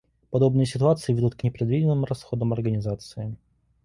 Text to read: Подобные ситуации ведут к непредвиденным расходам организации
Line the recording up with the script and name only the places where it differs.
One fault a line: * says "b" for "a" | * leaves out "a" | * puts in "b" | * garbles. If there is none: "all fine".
all fine